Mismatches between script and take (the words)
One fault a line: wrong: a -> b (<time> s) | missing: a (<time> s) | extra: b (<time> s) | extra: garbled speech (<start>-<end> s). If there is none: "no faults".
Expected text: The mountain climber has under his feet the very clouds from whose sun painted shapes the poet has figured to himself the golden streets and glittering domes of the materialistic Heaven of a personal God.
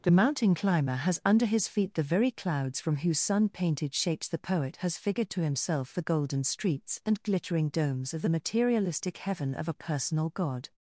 no faults